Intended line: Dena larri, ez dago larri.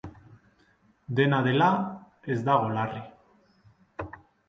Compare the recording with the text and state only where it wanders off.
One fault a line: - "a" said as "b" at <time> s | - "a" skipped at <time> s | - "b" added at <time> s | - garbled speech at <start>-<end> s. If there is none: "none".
- "larri" said as "dela" at 1.5 s